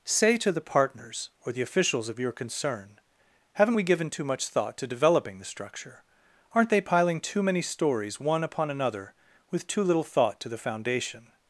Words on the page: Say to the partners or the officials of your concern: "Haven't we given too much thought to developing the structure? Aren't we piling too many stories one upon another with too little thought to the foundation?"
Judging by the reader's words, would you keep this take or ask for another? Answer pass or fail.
fail